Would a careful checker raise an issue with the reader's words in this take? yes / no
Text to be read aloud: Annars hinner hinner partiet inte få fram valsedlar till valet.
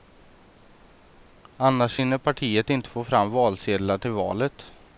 yes